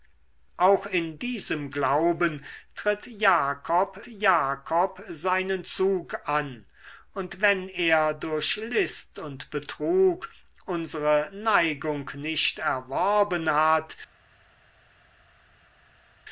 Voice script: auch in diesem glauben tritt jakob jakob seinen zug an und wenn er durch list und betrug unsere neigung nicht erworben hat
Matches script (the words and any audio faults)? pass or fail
pass